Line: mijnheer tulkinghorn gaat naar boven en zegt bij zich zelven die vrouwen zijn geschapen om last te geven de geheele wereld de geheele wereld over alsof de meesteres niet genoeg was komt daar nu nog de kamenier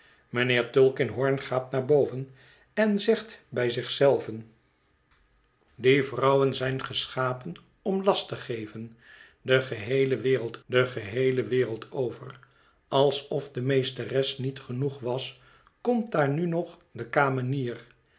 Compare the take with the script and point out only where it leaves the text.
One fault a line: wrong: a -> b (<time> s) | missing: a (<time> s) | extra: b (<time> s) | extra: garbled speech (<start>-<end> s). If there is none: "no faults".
no faults